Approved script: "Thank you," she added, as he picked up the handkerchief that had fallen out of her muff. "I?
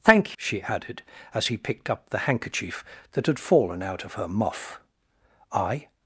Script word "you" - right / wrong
wrong